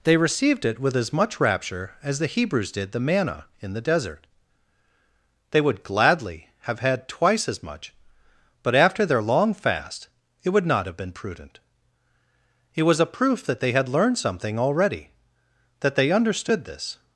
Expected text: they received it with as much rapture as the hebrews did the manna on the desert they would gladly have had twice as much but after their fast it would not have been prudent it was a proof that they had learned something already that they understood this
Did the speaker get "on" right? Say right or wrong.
wrong